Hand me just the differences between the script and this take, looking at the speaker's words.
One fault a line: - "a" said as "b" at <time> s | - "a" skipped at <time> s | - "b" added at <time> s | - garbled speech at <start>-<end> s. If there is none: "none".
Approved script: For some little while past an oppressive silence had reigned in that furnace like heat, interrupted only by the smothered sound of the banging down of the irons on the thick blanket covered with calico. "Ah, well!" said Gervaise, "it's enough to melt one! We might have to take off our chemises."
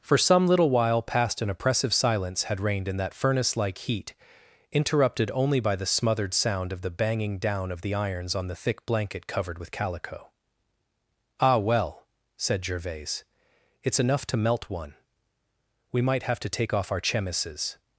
none